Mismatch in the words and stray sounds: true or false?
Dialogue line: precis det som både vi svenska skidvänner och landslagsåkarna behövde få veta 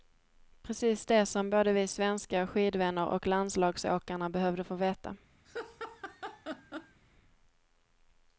true